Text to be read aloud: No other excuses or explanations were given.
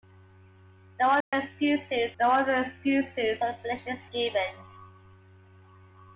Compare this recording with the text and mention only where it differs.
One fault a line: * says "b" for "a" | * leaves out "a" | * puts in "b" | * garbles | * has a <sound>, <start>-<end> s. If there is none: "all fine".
* has a dropout, 1.2-1.3 s
* puts in "no other excuses"
* leaves out "were"